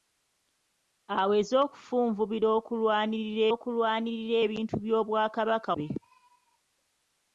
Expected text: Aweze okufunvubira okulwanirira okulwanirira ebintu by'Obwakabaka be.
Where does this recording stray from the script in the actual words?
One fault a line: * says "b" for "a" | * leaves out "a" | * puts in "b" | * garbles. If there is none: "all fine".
all fine